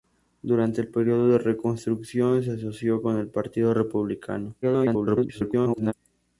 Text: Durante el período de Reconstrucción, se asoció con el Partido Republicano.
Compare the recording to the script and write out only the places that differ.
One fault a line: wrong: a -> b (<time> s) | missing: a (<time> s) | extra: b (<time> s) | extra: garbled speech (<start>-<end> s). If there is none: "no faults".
extra: garbled speech (4.6-5.9 s)